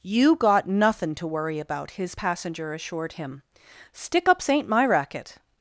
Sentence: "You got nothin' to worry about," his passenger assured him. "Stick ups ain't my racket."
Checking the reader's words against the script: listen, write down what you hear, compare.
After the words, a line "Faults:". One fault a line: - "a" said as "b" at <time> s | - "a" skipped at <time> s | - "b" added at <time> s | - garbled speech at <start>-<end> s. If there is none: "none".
"You got nothin' to worry about," his passenger assured him. "Stick ups ain't my racket."
Faults:
none